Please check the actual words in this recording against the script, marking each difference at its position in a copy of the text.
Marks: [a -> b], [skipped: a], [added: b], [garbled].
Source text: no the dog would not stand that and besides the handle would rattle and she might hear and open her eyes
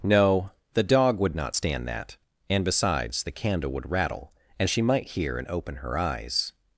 no the dog would not stand that and besides the [handle -> candle] would rattle and she might hear and open her eyes